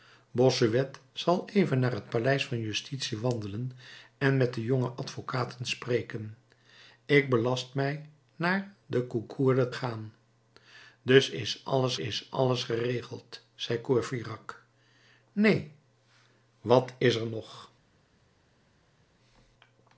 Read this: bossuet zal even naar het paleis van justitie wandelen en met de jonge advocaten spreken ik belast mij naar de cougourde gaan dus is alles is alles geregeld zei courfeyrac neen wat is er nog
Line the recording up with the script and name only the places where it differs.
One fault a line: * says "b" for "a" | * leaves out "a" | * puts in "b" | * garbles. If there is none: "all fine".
all fine